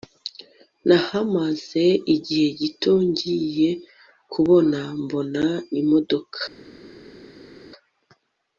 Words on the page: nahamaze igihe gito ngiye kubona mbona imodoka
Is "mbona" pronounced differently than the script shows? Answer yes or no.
no